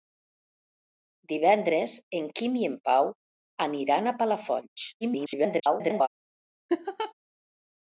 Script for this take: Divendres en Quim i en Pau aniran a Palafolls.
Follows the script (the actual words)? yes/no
no